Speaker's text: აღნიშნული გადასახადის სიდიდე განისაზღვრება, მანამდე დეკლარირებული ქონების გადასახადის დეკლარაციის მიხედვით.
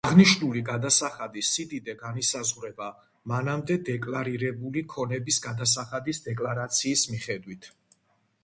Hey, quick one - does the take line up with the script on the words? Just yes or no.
yes